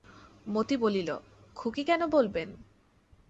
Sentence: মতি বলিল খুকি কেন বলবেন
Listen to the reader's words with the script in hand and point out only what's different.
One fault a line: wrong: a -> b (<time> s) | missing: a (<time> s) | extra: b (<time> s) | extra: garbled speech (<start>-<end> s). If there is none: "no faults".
no faults